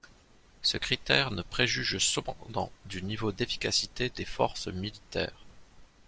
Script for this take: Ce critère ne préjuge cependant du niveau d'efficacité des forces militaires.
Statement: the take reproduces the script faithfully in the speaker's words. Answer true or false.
true